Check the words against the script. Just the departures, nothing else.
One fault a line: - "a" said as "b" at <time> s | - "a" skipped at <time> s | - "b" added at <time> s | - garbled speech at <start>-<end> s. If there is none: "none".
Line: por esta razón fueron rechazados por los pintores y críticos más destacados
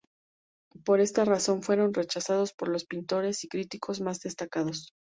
none